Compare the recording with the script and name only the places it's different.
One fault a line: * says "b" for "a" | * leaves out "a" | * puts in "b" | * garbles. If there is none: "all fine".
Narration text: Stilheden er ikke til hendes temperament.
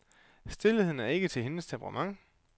all fine